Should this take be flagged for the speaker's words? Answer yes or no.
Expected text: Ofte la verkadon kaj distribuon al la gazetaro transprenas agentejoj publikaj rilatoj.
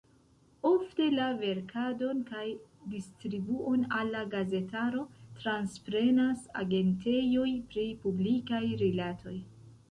yes